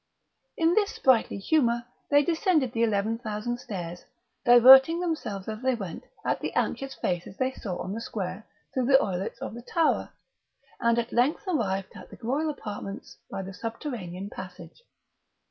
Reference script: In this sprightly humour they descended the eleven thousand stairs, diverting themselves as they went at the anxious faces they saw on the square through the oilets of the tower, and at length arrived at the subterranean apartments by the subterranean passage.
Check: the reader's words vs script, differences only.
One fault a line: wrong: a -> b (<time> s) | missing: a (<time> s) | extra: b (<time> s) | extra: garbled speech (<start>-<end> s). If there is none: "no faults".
wrong: subterranean -> royal (12.2 s)